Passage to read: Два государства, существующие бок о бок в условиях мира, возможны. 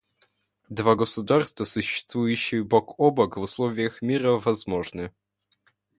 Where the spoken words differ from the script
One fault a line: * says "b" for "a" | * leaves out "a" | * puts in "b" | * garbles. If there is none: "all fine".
all fine